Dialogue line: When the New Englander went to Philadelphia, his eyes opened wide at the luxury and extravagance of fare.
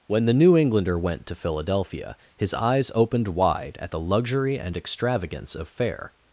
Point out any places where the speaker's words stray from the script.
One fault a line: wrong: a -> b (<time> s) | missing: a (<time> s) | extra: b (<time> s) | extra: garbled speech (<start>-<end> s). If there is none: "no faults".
no faults